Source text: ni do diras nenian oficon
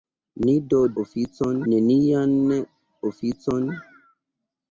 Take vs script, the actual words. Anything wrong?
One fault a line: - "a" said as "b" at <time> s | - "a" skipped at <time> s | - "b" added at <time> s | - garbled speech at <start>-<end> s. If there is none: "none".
- "diras" said as "oficon" at 1.0 s